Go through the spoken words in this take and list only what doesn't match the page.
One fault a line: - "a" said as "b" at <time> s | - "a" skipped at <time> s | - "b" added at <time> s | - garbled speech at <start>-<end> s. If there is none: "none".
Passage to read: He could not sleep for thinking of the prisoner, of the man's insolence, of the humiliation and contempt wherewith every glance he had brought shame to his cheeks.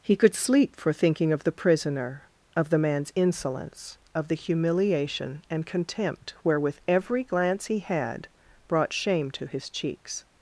- "not" skipped at 0.3 s